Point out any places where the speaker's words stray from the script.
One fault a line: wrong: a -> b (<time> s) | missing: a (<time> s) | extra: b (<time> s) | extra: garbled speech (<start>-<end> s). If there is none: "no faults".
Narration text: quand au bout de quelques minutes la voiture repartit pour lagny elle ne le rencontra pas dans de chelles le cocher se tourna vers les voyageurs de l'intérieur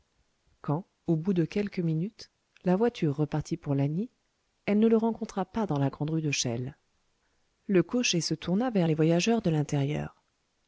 extra: la grande rue (5.8 s)